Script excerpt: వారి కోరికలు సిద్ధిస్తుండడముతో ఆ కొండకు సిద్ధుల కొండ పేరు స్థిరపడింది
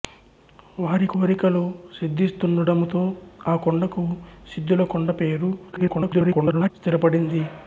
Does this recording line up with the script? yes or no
no